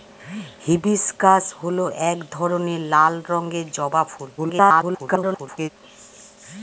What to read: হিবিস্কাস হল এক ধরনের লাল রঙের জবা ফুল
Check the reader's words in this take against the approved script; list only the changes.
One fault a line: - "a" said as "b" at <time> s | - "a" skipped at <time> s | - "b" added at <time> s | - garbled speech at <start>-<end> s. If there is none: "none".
- garbled speech at 4.4-5.7 s